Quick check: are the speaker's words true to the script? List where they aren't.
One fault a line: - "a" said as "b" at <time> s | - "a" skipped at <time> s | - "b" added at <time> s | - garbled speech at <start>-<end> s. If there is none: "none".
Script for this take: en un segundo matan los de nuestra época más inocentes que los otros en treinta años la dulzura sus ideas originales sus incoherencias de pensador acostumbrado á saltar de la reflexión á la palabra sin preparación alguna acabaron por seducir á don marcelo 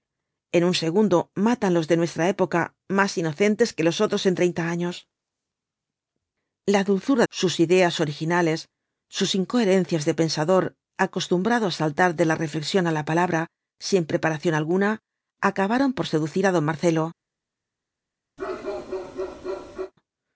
none